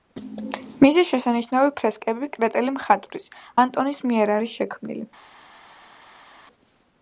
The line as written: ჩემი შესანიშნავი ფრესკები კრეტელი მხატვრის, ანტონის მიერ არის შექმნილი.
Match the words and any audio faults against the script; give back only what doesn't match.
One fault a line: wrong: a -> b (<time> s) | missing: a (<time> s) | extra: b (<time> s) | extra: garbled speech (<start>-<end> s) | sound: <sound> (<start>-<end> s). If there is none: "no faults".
wrong: ჩემი -> მისი (0.8 s)